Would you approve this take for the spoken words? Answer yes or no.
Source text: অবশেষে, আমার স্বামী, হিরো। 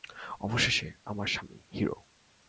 yes